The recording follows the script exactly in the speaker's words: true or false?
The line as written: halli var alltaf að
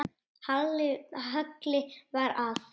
false